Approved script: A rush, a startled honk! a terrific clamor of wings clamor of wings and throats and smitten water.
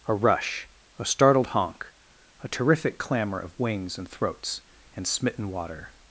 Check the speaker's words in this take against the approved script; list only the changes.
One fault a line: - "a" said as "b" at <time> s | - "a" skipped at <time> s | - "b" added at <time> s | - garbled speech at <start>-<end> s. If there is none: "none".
- "clamor of wings" skipped at 4.0 s